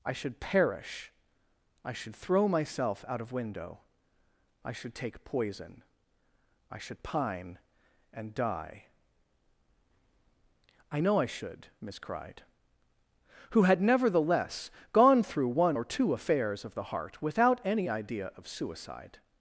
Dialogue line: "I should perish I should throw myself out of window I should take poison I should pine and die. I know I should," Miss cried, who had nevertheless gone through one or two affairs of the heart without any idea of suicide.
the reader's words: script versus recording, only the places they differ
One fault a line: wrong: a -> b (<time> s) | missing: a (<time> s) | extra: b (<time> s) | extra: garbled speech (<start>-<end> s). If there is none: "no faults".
no faults